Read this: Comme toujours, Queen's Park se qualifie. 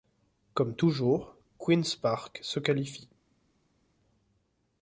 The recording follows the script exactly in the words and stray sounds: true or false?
true